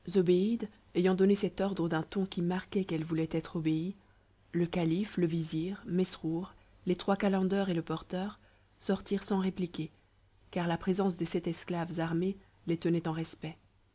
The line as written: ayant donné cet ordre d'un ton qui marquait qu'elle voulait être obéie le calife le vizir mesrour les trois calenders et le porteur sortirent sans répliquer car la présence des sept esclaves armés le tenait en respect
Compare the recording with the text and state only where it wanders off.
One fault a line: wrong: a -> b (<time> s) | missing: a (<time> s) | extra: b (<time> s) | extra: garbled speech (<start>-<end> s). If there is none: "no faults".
wrong: le -> les (12.7 s)